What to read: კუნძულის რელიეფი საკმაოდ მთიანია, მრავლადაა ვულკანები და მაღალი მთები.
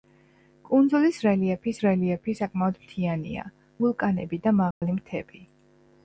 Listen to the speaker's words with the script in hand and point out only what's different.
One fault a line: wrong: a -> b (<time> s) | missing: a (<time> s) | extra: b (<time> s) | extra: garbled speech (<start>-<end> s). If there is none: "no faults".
extra: რელიეფი (1.8 s)
missing: მრავლადაა (3.5 s)